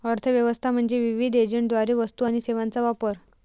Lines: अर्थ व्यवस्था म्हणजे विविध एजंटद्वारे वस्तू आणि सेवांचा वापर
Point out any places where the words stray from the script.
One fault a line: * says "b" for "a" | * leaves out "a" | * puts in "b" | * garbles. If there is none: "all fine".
all fine